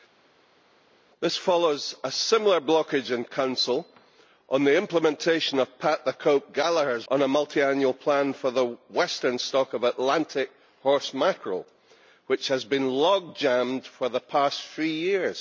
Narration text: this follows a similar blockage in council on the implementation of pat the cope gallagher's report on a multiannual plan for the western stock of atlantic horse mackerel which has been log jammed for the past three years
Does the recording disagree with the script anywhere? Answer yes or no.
yes